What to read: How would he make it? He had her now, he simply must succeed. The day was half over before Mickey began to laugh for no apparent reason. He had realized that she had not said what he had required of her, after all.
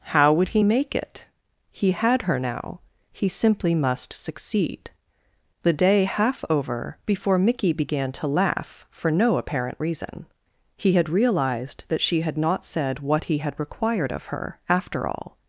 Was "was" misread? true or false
true